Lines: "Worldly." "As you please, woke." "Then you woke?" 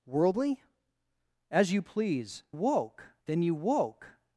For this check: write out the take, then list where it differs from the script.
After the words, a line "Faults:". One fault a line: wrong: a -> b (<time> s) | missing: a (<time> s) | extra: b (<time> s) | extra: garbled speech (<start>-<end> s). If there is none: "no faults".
"Worldly." "As you please, woke." "Then you woke?"
Faults:
no faults